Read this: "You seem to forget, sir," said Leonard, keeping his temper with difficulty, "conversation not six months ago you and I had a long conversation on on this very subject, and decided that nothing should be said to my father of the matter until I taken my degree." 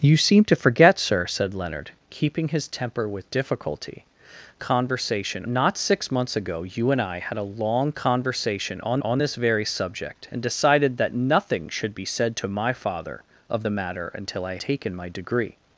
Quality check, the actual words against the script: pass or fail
pass